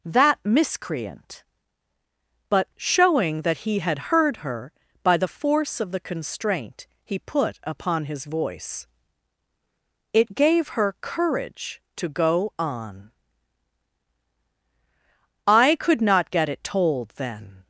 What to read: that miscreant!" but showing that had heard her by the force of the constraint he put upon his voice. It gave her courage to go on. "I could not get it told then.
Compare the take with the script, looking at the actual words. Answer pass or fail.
fail